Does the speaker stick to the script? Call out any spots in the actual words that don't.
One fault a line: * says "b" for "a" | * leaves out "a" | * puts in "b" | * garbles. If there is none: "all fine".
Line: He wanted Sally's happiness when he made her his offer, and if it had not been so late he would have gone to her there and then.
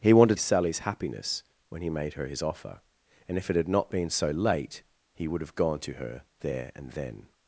all fine